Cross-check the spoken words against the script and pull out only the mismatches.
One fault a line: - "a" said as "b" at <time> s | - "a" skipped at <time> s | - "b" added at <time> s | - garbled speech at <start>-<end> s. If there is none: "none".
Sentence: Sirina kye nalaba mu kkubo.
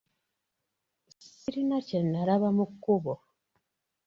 none